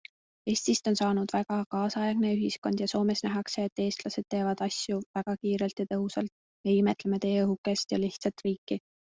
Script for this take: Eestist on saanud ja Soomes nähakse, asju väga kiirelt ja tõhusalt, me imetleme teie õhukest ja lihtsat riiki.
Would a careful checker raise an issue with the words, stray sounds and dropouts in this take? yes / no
yes